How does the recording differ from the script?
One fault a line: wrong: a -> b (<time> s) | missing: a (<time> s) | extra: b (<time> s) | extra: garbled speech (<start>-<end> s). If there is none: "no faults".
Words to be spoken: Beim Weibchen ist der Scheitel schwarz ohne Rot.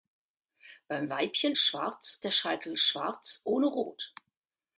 wrong: ist -> schwarz (1.5 s)